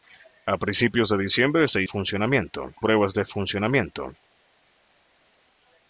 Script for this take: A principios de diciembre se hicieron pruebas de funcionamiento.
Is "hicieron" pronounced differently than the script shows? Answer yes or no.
yes